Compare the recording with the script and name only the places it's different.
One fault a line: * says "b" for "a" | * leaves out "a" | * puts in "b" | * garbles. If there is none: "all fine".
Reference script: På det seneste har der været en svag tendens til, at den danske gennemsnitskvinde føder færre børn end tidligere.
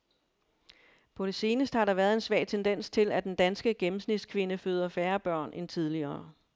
all fine